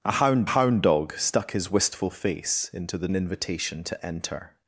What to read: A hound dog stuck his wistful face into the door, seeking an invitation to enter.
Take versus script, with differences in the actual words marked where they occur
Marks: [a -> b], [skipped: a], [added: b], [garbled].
A hound [added: hound] dog stuck his wistful face into the [skipped: door, seeking] an invitation to enter.